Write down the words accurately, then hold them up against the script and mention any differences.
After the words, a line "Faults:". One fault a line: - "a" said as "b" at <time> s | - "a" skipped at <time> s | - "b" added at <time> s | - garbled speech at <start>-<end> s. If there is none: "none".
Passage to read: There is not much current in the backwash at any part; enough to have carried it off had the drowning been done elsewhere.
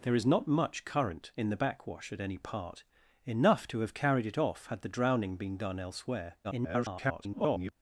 There is not much current in the backwash at any part; enough to have carried it off had the drowning been done elsewhere. [garbled]
Faults:
- garbled speech at 6.4-7.7 s